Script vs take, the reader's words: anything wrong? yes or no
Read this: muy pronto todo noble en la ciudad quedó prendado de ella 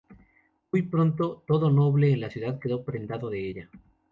no